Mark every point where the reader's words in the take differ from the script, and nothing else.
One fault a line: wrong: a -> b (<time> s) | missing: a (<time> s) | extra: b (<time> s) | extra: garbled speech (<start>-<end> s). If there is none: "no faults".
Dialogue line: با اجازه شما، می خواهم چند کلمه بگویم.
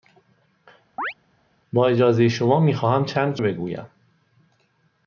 missing: کلمه (3.4 s)